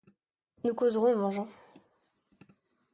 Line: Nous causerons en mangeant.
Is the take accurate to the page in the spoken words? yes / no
yes